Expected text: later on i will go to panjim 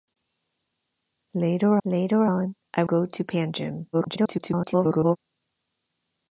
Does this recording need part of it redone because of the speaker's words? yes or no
yes